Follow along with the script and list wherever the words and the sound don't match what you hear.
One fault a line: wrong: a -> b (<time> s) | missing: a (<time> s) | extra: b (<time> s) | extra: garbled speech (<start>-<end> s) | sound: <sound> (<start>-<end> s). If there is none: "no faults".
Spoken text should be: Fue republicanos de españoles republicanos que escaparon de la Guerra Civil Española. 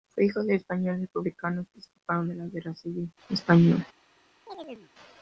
wrong: republicanos -> hijo (0.2 s)
sound: chirp (4.5-4.9 s)